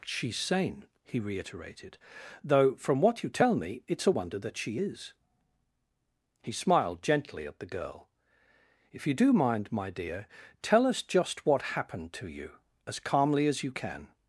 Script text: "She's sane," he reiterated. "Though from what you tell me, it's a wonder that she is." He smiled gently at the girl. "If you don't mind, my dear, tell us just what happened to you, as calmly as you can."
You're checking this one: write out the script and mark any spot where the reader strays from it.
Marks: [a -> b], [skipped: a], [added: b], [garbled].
"She's sane," he reiterated. "Though from what you tell me, it's a wonder that she is." He smiled gently at the girl. "If you [don't -> do] mind, my dear, tell us just what happened to you, as calmly as you can."